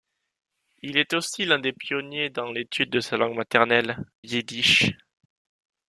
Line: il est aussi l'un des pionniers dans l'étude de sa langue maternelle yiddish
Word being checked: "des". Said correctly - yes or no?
yes